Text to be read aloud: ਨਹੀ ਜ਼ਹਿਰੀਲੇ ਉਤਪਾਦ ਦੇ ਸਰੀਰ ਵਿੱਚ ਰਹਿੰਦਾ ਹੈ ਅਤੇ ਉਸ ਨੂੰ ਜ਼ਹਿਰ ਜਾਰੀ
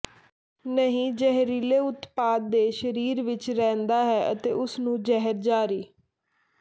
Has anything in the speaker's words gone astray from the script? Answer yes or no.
no